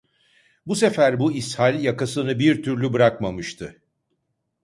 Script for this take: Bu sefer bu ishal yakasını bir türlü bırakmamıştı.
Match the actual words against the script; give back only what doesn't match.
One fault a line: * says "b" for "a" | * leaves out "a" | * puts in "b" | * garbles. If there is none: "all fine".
all fine